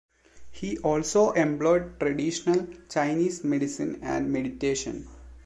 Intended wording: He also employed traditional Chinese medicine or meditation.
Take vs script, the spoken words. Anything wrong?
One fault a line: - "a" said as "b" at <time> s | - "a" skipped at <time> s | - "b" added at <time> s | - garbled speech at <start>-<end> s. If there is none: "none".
- "or" said as "and" at 4.0 s